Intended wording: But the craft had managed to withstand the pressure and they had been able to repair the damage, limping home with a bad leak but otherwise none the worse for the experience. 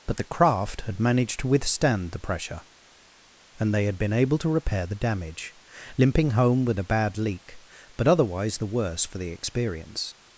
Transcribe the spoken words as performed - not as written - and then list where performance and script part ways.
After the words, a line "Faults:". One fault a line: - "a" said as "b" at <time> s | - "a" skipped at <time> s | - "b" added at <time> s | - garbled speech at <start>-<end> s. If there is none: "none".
But the craft had managed to withstand the pressure and they had been able to repair the damage, limping home with a bad leak but otherwise the worse for the experience.
Faults:
- "none" skipped at 8.6 s